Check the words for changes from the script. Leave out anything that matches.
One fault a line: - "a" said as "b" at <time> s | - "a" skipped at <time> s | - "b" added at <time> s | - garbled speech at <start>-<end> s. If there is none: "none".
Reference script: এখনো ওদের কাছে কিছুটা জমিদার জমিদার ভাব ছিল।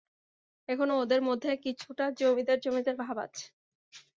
- "কাছে" said as "মধ্যে" at 1.2 s
- "ছিল" said as "আছে" at 3.2 s